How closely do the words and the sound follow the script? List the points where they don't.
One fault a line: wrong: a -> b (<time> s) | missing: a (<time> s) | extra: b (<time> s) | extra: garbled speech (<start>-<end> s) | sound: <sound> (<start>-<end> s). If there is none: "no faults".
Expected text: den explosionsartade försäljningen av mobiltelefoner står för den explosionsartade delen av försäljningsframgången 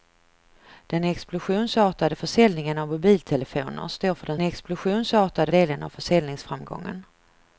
no faults